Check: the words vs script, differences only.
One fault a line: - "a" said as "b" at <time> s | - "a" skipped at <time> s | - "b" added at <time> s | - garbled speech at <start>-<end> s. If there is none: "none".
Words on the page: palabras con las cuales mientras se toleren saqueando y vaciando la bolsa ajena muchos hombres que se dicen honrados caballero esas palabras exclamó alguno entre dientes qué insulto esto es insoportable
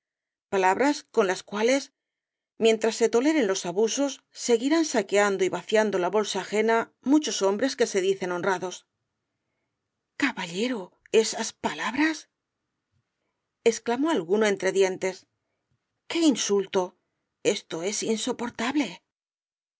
- "los abusos seguirán" added at 3.5 s